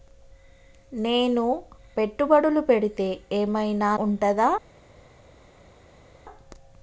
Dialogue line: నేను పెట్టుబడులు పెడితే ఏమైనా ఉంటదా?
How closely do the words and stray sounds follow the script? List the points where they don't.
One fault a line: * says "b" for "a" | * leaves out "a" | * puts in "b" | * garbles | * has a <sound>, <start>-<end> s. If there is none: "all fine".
all fine